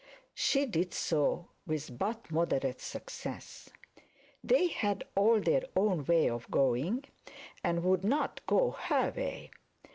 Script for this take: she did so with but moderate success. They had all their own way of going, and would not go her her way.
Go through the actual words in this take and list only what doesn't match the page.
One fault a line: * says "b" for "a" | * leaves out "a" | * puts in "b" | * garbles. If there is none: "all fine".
* leaves out "her"